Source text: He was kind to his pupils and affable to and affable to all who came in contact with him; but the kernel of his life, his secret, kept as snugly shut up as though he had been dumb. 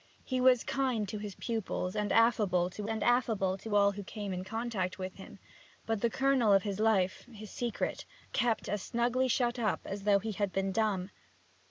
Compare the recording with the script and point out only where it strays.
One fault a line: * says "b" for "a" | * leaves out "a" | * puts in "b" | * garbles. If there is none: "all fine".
all fine